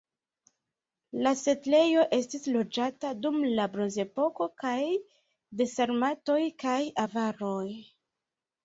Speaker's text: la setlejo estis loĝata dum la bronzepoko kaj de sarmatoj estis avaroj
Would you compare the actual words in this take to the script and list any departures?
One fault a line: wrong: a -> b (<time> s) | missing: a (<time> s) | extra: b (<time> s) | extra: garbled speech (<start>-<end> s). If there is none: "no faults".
wrong: estis -> kaj (6.7 s)